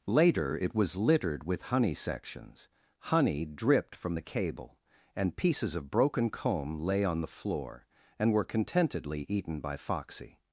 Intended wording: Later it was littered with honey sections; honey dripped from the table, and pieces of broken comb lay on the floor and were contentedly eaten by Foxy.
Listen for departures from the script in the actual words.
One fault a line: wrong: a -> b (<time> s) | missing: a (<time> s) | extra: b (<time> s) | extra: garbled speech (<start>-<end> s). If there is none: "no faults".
wrong: table -> cable (4.2 s)